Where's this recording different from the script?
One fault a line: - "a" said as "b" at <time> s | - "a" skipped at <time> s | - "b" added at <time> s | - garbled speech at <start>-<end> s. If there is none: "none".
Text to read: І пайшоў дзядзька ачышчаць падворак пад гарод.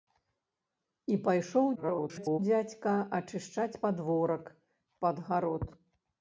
- garbled speech at 1.7-2.4 s